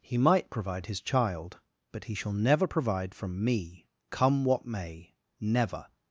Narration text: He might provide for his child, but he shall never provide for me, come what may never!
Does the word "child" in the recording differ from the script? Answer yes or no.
no